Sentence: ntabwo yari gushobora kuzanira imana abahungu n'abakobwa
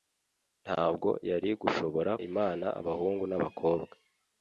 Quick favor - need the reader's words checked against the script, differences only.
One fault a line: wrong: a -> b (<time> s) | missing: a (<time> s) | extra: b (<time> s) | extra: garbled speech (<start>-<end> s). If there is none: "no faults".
missing: kuzanira (2.1 s)